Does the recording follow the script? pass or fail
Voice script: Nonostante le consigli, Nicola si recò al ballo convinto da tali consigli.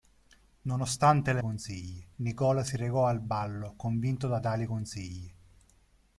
pass